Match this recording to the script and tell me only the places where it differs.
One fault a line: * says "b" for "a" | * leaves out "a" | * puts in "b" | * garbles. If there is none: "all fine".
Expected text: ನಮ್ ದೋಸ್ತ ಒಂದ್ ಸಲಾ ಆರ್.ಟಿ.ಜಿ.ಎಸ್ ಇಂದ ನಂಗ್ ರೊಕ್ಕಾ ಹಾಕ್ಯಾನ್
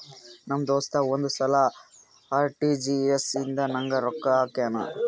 all fine